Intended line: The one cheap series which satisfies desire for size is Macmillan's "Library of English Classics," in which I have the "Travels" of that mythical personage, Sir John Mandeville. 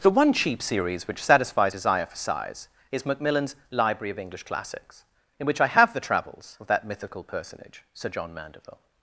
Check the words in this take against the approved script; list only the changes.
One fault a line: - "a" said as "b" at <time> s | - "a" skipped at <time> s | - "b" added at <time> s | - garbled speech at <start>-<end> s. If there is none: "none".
none